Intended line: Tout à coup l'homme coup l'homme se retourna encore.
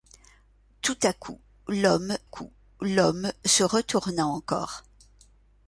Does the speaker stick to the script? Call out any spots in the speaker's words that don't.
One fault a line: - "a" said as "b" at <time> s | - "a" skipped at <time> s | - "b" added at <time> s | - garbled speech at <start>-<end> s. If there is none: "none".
none